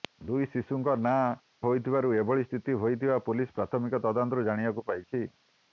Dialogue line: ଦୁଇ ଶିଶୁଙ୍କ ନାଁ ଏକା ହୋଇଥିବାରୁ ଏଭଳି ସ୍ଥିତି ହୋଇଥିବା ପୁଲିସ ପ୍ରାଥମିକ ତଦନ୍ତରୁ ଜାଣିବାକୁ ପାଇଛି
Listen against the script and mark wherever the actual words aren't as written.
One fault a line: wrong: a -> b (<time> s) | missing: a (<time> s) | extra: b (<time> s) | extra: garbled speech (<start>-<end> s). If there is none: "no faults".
missing: ଏକା (1.2 s)